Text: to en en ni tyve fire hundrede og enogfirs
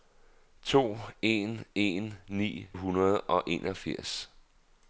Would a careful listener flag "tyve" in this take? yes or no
yes